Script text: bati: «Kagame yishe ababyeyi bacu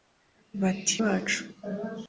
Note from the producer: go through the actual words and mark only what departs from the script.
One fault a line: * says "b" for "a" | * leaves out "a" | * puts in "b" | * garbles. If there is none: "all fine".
* leaves out "Kagame yishe ababyeyi"